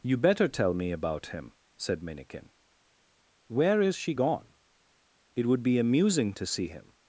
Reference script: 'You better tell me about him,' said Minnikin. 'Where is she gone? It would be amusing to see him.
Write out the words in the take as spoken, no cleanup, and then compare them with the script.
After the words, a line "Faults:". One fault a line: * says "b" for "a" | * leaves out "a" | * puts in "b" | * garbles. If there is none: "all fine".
'You better tell me about him,' said Minnikin. 'Where is she gone? It would be amusing to see him.
Faults:
all fine